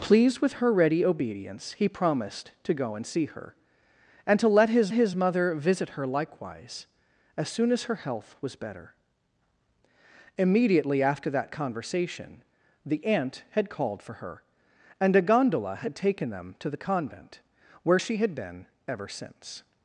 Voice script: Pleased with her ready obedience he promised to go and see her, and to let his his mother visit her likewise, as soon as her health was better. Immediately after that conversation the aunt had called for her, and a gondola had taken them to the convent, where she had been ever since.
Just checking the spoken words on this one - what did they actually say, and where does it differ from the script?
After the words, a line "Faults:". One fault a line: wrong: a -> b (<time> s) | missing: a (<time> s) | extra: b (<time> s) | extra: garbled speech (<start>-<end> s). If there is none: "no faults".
Pleased with her ready obedience he promised to go and see her, and to let his his mother visit her likewise, as soon as her health was better. Immediately after that conversation the aunt had called for her, and a gondola had taken them to the convent, where she had been ever since.
Faults:
no faults